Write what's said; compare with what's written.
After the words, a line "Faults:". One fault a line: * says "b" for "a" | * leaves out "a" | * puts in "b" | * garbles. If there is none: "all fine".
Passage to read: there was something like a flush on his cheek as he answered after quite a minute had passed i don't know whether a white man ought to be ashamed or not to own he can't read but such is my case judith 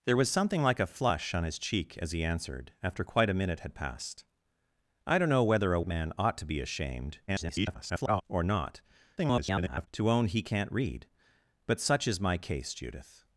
there was something like a flush on his cheek as he answered after quite a minute had passed i don't know whether a man ought to be ashamed [garbled] or not [garbled] to own he can't read but such is my case judith
Faults:
* leaves out "white"
* garbles
* garbles